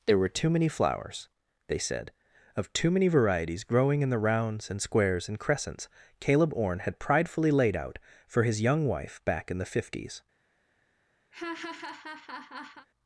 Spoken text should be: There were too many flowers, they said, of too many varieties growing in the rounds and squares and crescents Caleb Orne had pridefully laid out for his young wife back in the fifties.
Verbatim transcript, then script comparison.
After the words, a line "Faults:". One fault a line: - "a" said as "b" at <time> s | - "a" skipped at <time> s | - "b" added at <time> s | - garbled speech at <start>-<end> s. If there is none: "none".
There were too many flowers, they said, of too many varieties growing in the rounds and squares and crescents Caleb Orne had pridefully laid out for his young wife back in the fifties.
Faults:
none